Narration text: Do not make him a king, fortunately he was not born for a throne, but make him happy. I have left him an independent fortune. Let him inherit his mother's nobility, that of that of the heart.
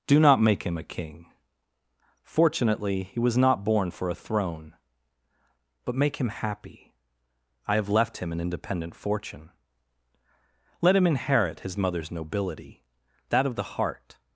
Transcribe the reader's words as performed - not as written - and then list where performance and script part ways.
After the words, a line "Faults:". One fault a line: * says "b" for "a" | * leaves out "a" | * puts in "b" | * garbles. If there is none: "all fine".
Do not make him a king, fortunately he was not born for a throne, but make him happy. I have left him an independent fortune. Let him inherit his mother's nobility, that of the heart.
Faults:
* leaves out "that of"